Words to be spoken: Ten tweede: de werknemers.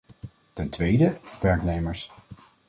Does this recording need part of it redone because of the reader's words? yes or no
no